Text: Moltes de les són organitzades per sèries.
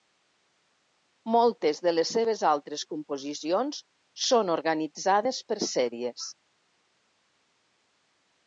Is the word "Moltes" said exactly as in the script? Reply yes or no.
yes